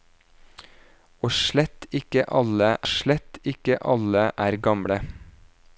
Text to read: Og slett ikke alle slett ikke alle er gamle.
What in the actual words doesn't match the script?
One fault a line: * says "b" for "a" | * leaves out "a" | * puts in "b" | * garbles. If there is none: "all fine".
all fine